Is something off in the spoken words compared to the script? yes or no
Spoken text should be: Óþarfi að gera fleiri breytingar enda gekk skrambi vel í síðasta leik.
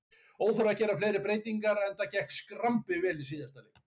no